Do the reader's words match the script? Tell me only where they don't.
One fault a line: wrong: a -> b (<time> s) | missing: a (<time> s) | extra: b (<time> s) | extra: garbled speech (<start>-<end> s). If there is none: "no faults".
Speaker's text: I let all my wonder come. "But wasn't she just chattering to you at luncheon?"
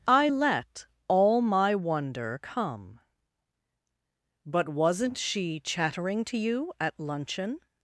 missing: just (5.6 s)